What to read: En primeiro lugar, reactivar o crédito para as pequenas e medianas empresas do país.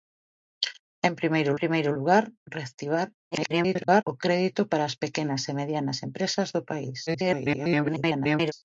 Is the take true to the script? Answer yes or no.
no